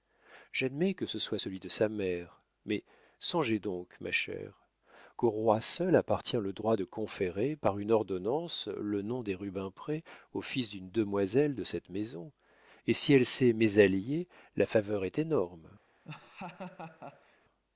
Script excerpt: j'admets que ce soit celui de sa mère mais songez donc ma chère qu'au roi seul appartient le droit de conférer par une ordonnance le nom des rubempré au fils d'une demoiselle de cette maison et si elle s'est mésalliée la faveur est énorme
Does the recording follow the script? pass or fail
pass